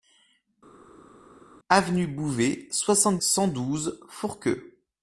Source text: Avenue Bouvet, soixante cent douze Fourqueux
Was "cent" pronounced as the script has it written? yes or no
yes